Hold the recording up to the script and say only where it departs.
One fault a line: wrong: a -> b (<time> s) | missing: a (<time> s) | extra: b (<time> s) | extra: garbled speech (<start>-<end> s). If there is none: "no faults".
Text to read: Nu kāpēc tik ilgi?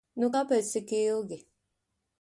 no faults